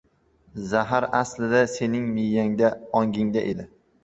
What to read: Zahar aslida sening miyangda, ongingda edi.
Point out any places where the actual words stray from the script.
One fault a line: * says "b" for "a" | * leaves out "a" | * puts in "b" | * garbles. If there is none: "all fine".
all fine